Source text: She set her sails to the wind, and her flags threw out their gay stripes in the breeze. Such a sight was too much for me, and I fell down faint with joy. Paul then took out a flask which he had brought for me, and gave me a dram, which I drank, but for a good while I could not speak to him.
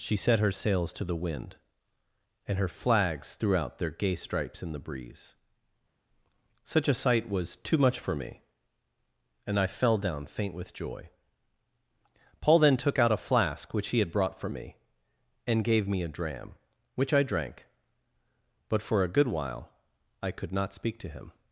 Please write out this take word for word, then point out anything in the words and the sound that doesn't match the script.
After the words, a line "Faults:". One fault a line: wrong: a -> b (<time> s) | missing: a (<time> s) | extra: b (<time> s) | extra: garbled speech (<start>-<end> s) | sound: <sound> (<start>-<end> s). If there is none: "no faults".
She set her sails to the wind, and her flags threw out their gay stripes in the breeze. Such a sight was too much for me, and I fell down faint with joy. Paul then took out a flask which he had brought for me, and gave me a dram, which I drank, but for a good while I could not speak to him.
Faults:
no faults